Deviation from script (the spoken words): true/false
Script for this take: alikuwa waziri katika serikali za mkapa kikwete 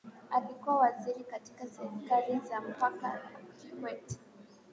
false